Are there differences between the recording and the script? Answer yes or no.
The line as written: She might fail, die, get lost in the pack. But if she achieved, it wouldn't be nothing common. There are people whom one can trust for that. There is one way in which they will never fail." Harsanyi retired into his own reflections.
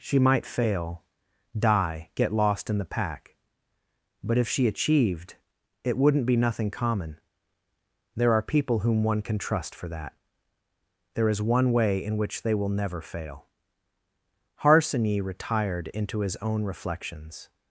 no